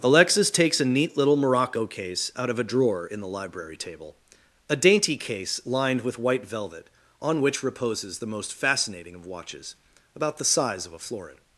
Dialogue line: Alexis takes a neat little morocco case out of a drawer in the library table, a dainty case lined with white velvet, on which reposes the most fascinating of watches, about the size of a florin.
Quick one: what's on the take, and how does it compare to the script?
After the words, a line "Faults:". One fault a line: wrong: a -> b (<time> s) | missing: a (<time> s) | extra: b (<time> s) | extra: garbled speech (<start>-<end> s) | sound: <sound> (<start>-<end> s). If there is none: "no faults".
Alexis takes a neat little morocco case out of a drawer in the library table, a dainty case lined with white velvet, on which reposes the most fascinating of watches, about the size of a florin.
Faults:
no faults